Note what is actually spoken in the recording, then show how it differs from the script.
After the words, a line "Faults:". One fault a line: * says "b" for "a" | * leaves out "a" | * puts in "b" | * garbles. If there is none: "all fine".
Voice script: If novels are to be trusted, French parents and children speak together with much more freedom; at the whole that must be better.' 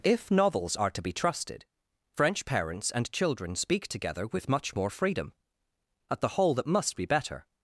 If novels are to be trusted, French parents and children speak together with much more freedom; at the whole that must be better.'
Faults:
all fine